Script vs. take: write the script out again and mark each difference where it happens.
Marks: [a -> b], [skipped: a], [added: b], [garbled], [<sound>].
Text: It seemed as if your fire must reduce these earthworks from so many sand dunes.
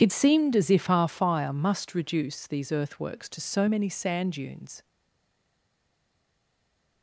It seemed as if [your -> our] fire must reduce these earthworks [from -> to] so many sand dunes.